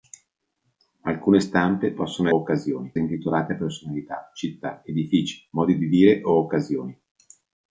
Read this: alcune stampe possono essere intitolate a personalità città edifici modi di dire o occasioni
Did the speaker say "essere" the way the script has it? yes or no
no